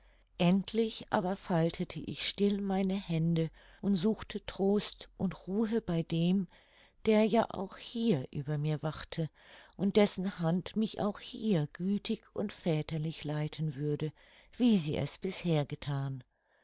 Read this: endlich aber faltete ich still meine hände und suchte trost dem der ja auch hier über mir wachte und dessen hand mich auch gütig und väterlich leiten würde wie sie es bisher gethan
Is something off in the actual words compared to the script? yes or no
yes